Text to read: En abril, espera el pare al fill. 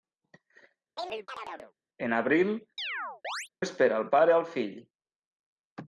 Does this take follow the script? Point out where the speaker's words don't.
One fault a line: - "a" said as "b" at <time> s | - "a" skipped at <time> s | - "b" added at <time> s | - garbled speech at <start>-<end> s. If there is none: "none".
none